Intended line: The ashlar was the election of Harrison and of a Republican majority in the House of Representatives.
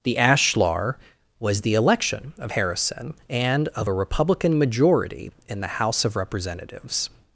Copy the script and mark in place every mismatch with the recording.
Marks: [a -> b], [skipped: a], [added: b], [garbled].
The ashlar was the election of Harrison and of a Republican majority in the House of Representatives.